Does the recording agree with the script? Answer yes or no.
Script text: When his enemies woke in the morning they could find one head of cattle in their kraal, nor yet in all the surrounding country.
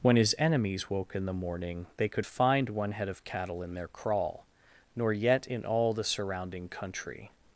yes